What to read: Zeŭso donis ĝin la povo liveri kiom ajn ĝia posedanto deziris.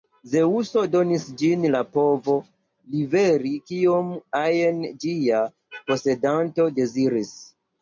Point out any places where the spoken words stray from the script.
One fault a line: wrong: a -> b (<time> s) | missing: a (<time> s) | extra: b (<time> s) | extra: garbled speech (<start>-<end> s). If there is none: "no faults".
no faults